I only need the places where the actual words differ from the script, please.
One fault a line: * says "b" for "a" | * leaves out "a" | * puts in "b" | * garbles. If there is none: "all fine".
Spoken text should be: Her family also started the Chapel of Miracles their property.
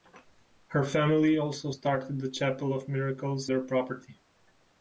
all fine